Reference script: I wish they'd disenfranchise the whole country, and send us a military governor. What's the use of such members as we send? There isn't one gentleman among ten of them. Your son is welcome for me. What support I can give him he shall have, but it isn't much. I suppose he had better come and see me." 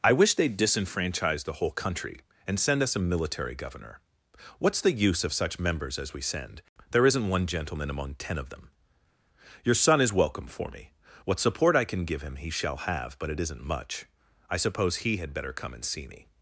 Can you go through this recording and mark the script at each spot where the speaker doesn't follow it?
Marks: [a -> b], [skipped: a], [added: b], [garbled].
I wish they'd disenfranchise the whole country, and send us a military governor. What's the use of such members as we send? There isn't one gentleman among ten of them. Your son is welcome for me. What support I can give him he shall have, but it isn't much. I suppose he had better come and see me."